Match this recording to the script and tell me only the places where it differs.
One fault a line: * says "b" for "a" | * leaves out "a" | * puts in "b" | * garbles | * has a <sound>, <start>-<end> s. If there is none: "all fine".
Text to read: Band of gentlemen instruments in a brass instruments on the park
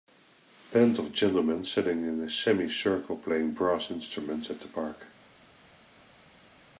* says "sitting" for "instruments"
* puts in "semi circle playing"
* says "at" for "on"